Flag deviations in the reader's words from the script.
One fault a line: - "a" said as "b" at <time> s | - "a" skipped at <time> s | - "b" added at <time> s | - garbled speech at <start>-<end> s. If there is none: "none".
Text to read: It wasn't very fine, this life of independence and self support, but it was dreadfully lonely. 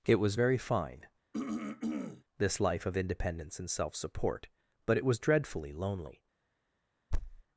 - "wasn't" said as "was" at 0.1 s